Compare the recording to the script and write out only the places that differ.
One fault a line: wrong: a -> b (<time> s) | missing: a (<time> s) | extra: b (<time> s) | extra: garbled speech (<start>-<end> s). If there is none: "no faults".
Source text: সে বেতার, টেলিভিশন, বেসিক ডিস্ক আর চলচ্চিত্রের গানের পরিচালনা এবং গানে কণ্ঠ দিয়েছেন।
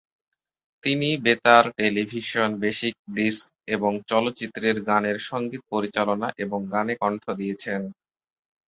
wrong: সে -> তিনি (0.8 s)
wrong: আর -> এবং (3.7 s)
extra: সঙ্গীত (5.3 s)